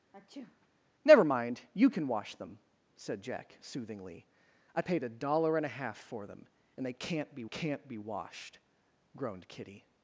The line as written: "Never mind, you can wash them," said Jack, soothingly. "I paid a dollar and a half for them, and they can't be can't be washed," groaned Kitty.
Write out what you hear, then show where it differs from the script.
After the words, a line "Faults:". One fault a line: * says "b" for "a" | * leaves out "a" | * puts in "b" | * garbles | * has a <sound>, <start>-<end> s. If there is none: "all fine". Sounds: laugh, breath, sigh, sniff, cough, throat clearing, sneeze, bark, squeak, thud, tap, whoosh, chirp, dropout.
"Never mind, you can wash them," said Jack, soothingly. "I paid a dollar and a half for them, and they can't be can't be washed," groaned Kitty.
Faults:
* has a sneeze, 0.1-0.7 s